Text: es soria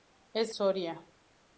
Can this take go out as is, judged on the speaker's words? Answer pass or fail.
pass